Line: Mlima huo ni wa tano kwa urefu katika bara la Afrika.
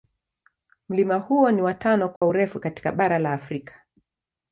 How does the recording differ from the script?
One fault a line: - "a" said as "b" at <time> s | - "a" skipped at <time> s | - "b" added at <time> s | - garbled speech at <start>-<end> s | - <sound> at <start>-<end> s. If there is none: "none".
- dropout at 2.2-2.2 s